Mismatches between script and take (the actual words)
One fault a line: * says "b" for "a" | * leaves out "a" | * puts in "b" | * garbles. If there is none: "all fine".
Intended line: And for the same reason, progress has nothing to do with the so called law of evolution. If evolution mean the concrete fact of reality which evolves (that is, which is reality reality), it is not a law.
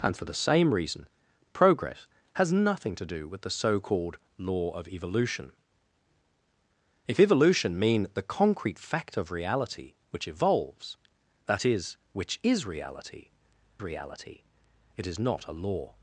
all fine